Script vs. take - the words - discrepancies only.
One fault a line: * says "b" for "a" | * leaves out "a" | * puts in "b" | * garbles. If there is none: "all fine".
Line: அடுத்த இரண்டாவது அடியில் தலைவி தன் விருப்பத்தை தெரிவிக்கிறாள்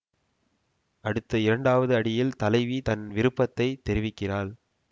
all fine